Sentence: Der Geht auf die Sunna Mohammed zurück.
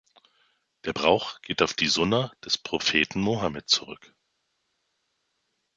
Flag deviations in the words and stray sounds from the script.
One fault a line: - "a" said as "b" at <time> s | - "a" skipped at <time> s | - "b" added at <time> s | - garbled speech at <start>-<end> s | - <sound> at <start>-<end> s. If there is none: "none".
- "Brauch" added at 0.9 s
- "des Propheten" added at 2.4 s